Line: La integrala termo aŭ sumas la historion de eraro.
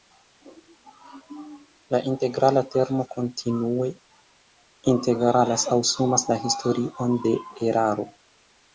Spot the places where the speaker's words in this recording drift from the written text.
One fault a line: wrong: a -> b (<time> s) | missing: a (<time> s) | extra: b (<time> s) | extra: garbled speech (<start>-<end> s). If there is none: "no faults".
extra: kontinue integralas (3.1 s)